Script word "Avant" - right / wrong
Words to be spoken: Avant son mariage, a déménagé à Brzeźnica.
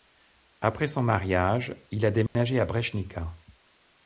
wrong